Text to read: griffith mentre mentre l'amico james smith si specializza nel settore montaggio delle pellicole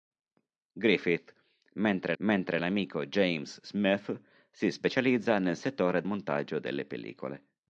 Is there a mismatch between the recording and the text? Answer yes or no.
no